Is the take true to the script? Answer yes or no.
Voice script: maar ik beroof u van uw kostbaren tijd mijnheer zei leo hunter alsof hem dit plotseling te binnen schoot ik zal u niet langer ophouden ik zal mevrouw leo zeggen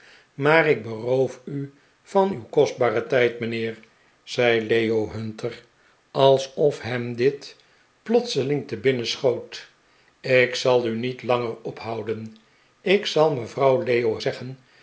yes